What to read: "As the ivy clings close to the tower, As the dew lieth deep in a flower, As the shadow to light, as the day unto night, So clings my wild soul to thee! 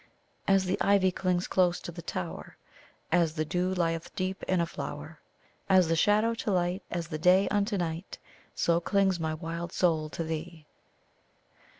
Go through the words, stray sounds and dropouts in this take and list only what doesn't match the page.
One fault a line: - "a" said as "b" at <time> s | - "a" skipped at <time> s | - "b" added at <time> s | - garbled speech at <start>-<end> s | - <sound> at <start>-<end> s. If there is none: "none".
none